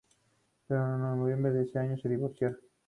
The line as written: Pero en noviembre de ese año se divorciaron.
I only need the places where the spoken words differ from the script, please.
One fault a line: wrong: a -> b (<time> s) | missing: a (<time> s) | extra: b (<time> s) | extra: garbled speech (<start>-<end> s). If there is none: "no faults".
no faults